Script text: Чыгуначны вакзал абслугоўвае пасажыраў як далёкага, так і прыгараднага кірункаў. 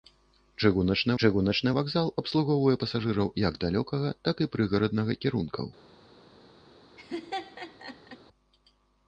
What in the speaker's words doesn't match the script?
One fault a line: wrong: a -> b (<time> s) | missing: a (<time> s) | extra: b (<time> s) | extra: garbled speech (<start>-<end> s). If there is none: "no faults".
extra: чыгуначны (1.2 s)